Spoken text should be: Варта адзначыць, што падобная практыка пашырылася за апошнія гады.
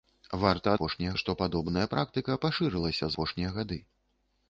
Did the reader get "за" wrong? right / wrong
wrong